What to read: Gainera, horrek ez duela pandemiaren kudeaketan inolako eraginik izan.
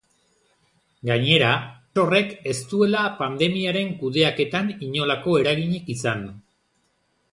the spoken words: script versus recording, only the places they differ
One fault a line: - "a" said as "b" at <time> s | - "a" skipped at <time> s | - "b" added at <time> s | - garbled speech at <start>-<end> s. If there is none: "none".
none